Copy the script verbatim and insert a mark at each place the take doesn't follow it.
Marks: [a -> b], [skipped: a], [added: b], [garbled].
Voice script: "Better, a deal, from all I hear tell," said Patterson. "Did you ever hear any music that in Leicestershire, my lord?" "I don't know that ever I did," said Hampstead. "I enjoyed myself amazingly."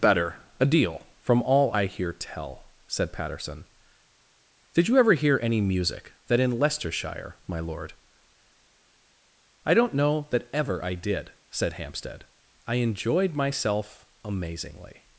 "Better, a deal, from all I hear tell," said Patterson. "Did you ever hear any music that in Leicestershire, my lord?" "I don't know that ever I did," said Hampstead. "I enjoyed myself amazingly."